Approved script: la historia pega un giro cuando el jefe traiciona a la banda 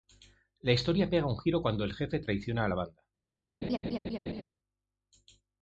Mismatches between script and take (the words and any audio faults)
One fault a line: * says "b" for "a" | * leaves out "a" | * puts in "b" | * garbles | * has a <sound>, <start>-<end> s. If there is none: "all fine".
* has a laugh, 3.6-4.4 s